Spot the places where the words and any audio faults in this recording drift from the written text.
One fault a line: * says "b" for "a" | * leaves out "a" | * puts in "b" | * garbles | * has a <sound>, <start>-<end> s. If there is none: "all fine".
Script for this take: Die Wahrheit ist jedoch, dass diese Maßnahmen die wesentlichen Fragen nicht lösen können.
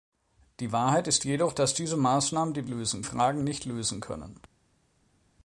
* says "lösen" for "wesentlichen"